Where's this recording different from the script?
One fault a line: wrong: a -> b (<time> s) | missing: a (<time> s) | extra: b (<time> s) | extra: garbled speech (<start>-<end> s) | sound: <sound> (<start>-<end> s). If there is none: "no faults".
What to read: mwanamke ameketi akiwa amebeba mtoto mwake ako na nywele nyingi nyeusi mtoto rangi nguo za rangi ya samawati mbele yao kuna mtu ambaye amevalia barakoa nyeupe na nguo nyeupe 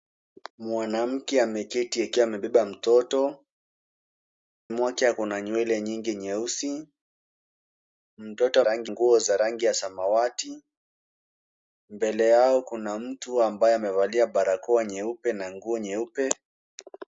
no faults